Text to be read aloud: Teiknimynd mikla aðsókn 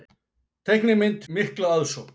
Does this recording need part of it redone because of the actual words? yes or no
no